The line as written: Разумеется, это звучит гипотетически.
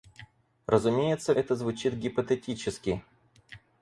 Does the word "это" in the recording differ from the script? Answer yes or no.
no